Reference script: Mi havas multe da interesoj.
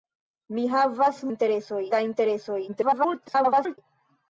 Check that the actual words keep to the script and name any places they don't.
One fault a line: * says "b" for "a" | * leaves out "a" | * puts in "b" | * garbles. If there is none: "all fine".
* says "interesoj" for "multe"
* garbles